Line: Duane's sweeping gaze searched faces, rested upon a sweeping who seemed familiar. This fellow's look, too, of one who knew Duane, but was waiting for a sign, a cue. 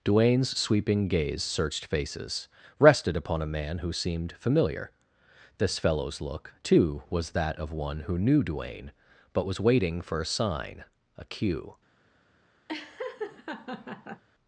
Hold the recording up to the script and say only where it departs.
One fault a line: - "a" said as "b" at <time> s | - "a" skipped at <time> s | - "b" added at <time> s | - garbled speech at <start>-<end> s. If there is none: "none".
- "sweeping" said as "man" at 3.5 s
- "was that" added at 7.1 s